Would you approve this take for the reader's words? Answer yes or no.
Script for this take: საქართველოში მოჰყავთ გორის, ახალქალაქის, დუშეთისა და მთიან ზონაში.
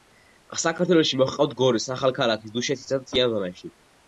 yes